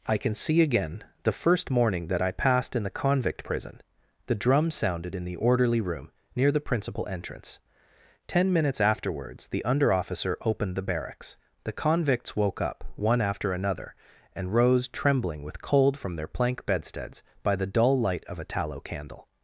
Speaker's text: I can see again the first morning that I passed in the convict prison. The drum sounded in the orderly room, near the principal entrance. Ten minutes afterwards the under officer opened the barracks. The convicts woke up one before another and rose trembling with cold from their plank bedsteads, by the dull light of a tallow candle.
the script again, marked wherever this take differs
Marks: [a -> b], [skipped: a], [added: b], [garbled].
I can see again the first morning that I passed in the convict prison. The drum sounded in the orderly room, near the principal entrance. Ten minutes afterwards the under officer opened the barracks. The convicts woke up one [before -> after] another and rose trembling with cold from their plank bedsteads, by the dull light of a tallow candle.